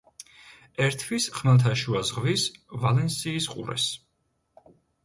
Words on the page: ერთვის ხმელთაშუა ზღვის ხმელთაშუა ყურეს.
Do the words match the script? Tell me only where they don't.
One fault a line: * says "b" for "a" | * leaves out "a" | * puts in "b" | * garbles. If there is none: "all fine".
* says "ვალენსიის" for "ხმელთაშუა"